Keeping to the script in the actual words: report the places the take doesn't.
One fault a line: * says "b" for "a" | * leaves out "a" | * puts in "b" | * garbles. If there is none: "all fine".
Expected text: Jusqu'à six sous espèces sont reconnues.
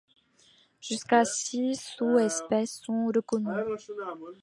all fine